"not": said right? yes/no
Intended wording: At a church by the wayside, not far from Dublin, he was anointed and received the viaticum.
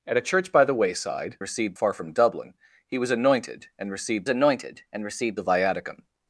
no